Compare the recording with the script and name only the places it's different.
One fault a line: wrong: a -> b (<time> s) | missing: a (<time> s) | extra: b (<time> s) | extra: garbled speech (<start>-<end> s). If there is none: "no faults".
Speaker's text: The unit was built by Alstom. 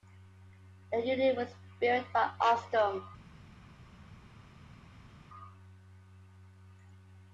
no faults